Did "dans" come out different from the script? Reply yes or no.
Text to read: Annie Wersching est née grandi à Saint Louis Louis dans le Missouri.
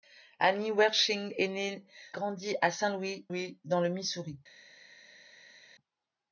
no